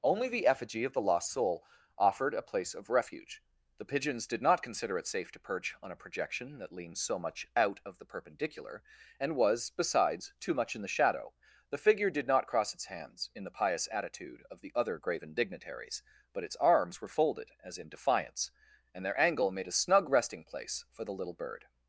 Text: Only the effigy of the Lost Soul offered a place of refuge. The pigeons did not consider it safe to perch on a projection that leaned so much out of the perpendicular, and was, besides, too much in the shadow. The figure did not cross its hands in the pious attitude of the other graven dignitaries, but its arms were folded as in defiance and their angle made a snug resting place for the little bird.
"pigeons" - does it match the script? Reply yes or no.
yes